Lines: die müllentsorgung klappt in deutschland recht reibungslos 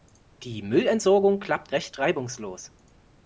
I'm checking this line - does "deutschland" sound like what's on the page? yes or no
no